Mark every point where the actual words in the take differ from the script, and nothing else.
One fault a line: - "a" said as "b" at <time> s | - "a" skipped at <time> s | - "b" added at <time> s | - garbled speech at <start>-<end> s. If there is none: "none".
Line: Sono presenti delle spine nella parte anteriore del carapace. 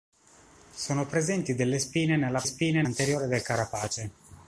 - "parte" said as "spine" at 2.4 s